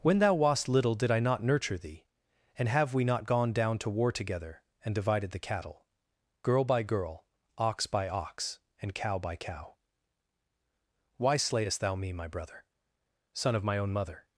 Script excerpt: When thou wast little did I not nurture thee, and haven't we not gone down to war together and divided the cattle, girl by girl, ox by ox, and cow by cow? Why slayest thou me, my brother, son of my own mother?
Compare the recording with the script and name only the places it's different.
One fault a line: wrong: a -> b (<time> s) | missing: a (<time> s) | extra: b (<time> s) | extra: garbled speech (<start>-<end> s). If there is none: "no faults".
wrong: haven't -> have (2.7 s)